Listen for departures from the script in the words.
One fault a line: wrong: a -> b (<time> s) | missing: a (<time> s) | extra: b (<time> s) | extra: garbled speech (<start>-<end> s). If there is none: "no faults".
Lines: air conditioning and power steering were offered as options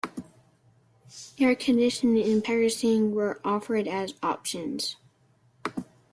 no faults